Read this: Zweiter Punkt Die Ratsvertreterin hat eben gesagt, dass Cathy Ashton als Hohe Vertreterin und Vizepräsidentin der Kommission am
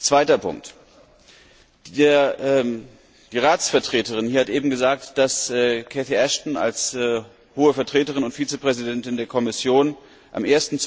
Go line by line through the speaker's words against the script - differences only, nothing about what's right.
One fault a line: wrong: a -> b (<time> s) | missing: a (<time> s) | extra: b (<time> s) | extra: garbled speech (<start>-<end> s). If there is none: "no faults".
no faults